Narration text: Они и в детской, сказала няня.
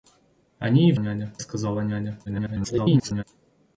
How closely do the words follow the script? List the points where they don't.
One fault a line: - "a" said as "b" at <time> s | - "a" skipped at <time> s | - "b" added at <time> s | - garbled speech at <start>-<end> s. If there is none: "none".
- "детской" said as "няня" at 1.0 s
- garbled speech at 2.3-3.2 s